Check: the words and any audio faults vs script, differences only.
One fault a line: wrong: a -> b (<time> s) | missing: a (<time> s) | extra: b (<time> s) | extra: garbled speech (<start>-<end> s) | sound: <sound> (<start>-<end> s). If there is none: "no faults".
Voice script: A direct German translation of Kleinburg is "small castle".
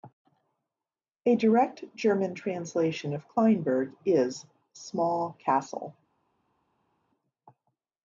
no faults